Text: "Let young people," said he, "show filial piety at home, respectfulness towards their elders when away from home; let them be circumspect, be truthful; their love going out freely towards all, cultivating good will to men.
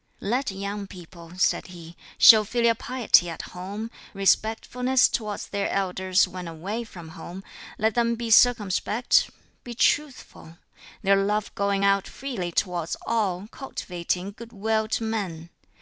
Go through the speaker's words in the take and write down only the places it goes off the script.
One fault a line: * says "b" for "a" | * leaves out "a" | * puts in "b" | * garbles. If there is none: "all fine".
all fine